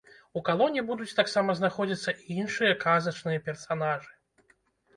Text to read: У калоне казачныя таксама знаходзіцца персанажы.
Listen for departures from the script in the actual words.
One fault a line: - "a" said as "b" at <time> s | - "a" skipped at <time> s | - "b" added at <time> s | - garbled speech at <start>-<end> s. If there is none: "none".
- "казачныя" said as "будуць" at 0.9 s
- "і іншыя казачныя" added at 2.3 s